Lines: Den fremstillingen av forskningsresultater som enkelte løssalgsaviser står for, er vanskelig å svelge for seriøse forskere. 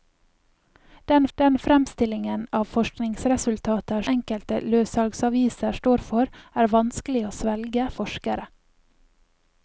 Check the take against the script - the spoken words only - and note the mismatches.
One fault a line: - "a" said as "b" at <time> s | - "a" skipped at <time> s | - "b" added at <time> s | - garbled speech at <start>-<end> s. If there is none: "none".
- "den" added at 1.3 s
- "som" skipped at 4.0 s
- "for seriøse" skipped at 7.9 s